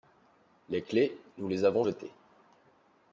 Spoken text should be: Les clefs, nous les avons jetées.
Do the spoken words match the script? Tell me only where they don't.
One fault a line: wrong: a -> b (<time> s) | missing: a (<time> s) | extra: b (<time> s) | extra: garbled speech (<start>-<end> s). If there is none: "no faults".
no faults